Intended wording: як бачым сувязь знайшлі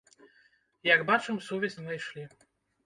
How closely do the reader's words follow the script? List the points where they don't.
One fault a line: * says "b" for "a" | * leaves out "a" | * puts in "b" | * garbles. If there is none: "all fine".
all fine